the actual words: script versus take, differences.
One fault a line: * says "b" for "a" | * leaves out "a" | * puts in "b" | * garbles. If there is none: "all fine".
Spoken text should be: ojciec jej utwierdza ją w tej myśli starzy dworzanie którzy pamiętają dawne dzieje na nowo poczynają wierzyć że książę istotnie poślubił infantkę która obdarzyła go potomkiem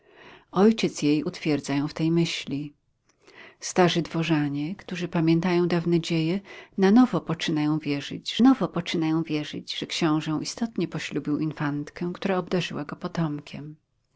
* puts in "nowo poczynają wierzyć"